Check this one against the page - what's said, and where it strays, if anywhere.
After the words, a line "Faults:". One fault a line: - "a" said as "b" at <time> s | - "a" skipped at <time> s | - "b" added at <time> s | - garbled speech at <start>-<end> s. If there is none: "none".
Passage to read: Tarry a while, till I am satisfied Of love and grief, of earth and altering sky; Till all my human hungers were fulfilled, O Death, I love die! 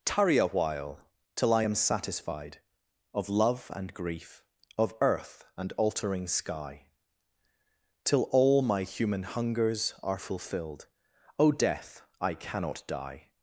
Tarry a while, till I am satisfied Of love and grief, of earth and altering sky; Till all my human hungers are fulfilled, O Death, I cannot die!
Faults:
- "were" said as "are" at 10.0 s
- "love" said as "cannot" at 12.3 s